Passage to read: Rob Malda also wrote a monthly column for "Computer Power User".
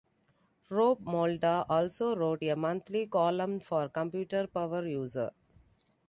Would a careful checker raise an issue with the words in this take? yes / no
no